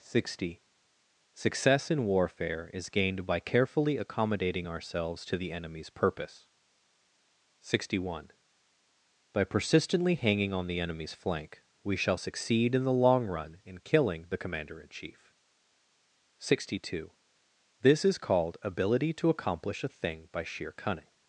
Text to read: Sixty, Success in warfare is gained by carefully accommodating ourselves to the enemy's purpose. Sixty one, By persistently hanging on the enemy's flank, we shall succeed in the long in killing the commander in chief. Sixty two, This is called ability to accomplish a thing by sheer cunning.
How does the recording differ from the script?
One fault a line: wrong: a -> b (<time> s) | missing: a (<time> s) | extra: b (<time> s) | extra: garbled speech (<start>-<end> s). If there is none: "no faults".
extra: run (13.2 s)